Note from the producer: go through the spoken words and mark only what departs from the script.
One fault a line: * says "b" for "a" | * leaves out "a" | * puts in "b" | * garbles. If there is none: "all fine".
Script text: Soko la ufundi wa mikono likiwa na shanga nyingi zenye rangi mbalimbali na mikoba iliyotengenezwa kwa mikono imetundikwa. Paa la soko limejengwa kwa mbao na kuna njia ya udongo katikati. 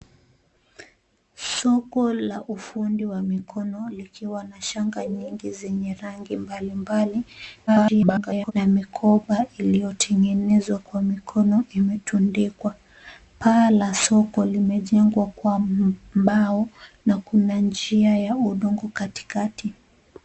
* garbles